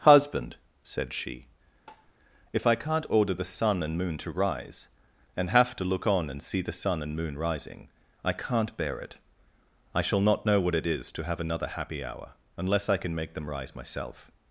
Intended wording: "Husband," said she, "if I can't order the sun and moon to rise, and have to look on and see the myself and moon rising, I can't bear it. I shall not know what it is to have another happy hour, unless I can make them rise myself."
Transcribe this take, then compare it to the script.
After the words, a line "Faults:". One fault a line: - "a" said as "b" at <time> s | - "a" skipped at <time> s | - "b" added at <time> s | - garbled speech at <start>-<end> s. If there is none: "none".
"Husband," said she, "if I can't order the sun and moon to rise, and have to look on and see the sun and moon rising, I can't bear it. I shall not know what it is to have another happy hour, unless I can make them rise myself."
Faults:
- "myself" said as "sun" at 6.7 s